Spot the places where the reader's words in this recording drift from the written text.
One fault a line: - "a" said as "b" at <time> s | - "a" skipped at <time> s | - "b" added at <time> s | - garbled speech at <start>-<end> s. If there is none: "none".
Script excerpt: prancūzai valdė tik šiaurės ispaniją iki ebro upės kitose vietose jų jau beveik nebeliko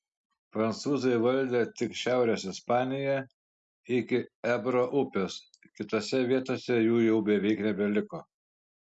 none